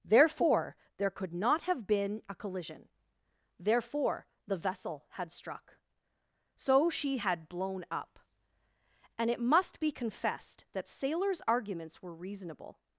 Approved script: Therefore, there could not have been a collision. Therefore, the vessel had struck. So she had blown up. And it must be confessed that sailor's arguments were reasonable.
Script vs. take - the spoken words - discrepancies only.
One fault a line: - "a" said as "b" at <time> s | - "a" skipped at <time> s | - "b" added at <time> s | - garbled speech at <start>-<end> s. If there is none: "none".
none